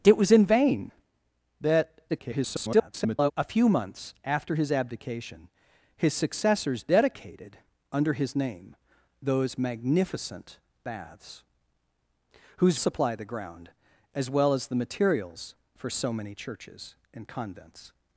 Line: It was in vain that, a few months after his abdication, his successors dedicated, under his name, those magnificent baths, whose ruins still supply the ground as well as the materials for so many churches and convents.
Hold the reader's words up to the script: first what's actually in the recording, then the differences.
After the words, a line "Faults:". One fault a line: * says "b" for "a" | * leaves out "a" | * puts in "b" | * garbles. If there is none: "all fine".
It was in vain that, [garbled] a few months after his abdication, his successors dedicated, under his name, those magnificent baths, whose supply the ground as well as the materials for so many churches and convents.
Faults:
* garbles
* leaves out "ruins still"